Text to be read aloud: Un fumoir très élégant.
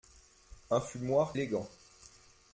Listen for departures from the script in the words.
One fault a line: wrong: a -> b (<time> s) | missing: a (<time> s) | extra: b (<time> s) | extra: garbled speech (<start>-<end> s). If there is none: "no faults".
missing: très (1.4 s)